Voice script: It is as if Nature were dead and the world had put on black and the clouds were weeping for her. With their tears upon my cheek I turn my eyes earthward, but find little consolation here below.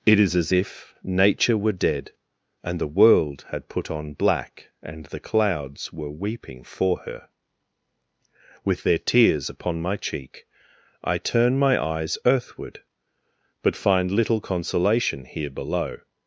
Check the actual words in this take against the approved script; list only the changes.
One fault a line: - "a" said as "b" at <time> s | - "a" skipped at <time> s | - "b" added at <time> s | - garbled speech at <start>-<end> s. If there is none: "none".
none